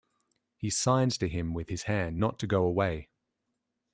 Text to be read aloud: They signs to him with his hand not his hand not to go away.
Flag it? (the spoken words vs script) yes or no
yes